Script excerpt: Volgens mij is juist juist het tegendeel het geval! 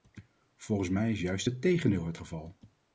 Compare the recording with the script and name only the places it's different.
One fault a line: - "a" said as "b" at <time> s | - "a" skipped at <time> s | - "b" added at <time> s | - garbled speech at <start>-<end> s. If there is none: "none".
- "juist" skipped at 1.5 s